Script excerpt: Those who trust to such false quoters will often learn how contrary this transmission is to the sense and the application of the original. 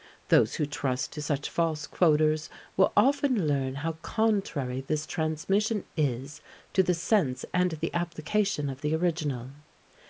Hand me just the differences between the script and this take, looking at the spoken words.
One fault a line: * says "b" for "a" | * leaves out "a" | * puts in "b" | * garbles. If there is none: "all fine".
all fine